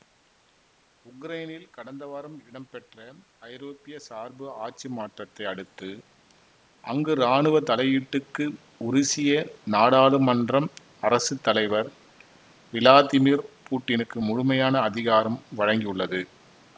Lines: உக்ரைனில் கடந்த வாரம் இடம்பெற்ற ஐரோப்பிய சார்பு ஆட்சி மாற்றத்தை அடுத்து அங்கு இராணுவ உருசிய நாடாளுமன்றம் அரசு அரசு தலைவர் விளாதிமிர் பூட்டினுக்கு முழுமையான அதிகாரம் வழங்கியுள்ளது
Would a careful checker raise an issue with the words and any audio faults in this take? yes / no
yes